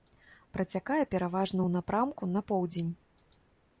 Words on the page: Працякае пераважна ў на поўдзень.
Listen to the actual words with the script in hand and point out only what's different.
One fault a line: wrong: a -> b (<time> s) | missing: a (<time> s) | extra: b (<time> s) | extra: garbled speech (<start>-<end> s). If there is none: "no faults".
extra: напрамку (1.8 s)